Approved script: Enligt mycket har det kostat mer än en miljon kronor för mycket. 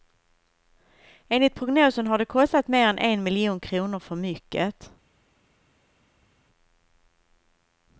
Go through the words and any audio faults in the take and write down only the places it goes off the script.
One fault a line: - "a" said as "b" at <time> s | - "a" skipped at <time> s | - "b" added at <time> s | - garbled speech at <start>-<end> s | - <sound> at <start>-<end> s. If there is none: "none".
- "mycket" said as "prognosen" at 1.6 s